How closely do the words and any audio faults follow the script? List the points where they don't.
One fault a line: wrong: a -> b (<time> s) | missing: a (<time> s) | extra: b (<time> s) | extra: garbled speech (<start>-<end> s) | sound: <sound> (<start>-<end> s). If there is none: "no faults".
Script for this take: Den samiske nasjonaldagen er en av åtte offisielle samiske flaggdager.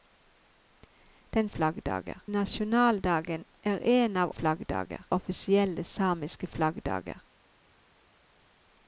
wrong: samiske -> flaggdager (1.5 s)
wrong: åtte -> flaggdager (4.3 s)